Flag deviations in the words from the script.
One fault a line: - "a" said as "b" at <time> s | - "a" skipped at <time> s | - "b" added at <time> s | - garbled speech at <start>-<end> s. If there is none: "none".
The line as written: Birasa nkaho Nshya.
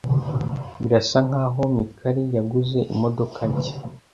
- "Mikali yaguze imodoka" added at 1.8 s